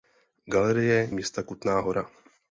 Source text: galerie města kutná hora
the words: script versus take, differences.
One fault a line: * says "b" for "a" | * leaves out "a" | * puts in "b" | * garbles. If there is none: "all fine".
all fine